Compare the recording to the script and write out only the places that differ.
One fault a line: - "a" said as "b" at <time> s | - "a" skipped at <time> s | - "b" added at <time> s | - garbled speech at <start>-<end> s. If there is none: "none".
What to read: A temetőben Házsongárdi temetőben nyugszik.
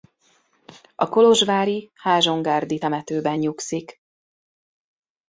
- "temetőben" said as "kolozsvári" at 1.1 s